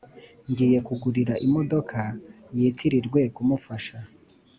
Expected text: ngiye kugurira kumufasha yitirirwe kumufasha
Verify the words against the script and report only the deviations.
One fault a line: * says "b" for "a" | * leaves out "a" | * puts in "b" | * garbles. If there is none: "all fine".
* says "imodoka" for "kumufasha"